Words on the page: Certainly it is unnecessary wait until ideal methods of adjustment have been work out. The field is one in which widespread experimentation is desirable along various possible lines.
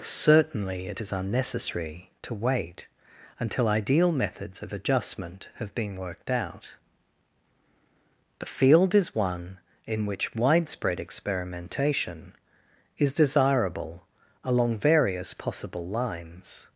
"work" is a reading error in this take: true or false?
true